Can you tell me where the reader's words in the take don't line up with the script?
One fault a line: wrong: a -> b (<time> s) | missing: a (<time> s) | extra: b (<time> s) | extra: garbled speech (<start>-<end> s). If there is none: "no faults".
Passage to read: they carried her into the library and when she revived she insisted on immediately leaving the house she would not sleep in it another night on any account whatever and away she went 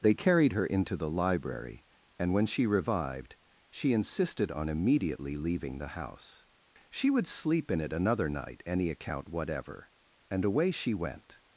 missing: not (7.3 s)
missing: on (8.6 s)